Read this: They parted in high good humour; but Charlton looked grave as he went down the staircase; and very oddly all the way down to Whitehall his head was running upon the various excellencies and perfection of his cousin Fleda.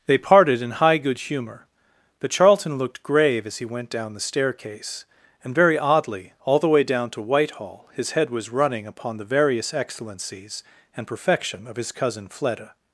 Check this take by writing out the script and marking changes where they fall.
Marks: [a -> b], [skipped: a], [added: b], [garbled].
They parted in high good humour; but Charlton looked grave as he went down the staircase; and very oddly all the way down to Whitehall his head was running upon the various excellencies and perfection of his cousin Fleda.